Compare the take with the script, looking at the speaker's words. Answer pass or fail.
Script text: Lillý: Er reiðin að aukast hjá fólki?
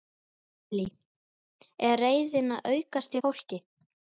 pass